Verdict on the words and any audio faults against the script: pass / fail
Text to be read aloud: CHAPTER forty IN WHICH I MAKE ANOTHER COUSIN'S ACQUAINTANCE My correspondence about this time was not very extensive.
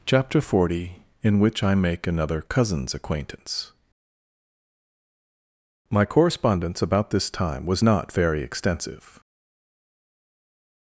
pass